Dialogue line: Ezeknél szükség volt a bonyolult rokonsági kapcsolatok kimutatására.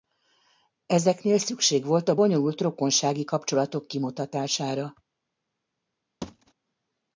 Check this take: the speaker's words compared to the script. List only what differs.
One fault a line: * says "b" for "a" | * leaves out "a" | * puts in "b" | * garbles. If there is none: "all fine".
all fine